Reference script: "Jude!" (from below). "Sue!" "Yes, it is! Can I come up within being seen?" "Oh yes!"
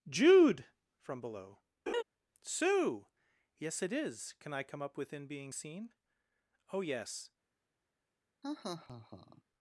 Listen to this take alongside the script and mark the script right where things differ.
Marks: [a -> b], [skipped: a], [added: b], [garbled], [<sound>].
"Jude!" (from below). [laugh] "Sue!" "Yes, it is! Can I come up within being seen?" "Oh yes!" [laugh]